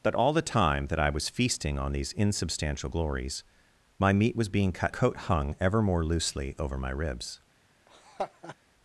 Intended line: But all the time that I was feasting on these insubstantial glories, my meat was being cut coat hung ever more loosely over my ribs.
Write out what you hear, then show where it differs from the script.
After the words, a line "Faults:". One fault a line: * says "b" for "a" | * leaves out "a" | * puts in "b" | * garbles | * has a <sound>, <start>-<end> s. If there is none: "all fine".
But all the time that I was feasting on these insubstantial glories, my meat was being cut coat hung ever more loosely over my ribs.
Faults:
* has a laugh, 7.9-8.6 s